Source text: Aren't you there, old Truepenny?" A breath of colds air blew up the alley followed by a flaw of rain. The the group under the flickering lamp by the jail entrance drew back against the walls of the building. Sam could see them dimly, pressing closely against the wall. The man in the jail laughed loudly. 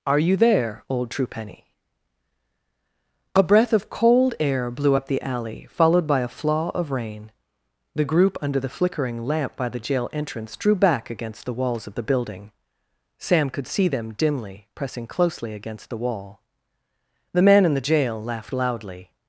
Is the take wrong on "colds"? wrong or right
wrong